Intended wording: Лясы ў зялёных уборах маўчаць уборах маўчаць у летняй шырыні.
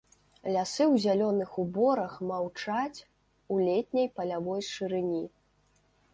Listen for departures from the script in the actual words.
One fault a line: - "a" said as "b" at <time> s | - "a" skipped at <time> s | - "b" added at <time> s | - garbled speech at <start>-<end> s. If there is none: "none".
- "уборах маўчаць" skipped at 3.0 s
- "палявой" added at 4.2 s